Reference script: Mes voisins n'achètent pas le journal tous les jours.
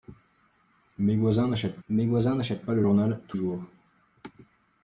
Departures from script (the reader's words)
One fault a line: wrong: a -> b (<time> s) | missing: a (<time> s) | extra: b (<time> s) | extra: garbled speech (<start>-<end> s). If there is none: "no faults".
extra: mes voisins n'achètent (1.9 s)
missing: les (3.4 s)